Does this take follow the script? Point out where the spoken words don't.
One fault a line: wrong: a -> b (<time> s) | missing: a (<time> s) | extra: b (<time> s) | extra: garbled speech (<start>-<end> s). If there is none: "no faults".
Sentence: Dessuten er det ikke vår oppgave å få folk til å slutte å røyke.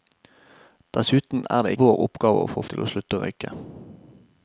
missing: ikke (1.7 s)
missing: folk (2.6 s)